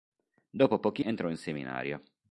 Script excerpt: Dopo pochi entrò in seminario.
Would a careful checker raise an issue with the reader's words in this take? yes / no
no